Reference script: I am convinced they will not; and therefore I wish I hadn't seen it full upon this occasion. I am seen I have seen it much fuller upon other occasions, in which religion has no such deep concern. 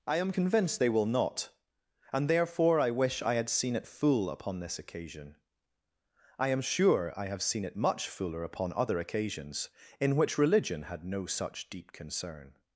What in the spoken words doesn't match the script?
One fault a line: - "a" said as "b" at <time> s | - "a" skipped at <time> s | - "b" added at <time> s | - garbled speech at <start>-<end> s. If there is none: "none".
- "hadn't" said as "had" at 3.3 s
- "seen" said as "sure" at 6.6 s
- "has" said as "had" at 10.8 s